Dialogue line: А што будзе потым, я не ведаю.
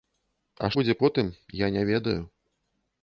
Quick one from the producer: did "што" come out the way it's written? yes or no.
no